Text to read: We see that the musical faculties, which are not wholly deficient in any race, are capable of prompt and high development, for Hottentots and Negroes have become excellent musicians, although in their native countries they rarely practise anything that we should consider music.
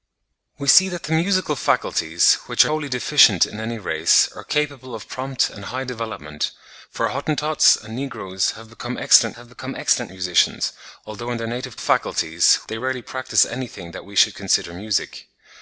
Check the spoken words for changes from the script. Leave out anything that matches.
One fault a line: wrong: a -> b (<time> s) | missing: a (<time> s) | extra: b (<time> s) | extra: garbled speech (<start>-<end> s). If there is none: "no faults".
missing: not (2.7 s)
extra: have become excellent (9.3 s)
wrong: countries -> faculties (11.8 s)